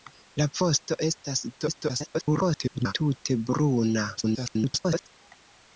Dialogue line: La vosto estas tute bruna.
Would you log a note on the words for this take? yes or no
yes